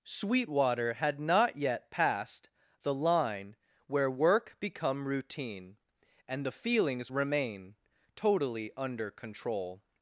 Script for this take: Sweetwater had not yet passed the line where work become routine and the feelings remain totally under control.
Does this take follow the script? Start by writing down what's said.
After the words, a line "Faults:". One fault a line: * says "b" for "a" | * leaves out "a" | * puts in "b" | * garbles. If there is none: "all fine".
Sweetwater had not yet passed the line where work become routine and the feelings remain totally under control.
Faults:
all fine